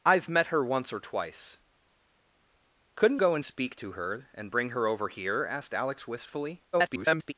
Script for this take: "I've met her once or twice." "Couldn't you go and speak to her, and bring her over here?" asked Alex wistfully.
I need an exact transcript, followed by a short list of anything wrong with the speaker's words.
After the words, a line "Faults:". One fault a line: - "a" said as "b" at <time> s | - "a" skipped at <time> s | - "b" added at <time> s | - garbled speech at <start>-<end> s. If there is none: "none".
"I've met her once or twice." "Couldn't go and speak to her, and bring her over here?" asked Alex wistfully. [garbled]
Faults:
- "you" skipped at 3.2 s
- garbled speech at 6.7-7.3 s